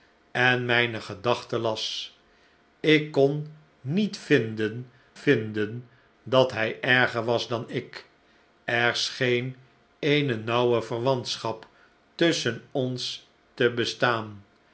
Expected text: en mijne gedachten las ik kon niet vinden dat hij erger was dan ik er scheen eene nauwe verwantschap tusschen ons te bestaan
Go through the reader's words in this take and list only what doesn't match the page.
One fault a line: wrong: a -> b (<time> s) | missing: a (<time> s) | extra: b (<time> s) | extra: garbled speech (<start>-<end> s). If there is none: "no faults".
extra: vinden (5.1 s)